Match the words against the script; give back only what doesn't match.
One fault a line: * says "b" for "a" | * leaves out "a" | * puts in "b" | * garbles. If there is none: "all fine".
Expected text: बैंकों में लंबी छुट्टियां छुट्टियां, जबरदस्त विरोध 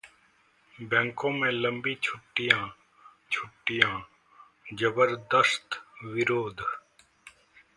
all fine